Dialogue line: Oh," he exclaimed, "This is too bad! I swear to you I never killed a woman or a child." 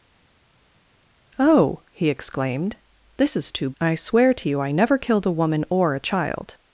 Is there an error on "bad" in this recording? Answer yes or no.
yes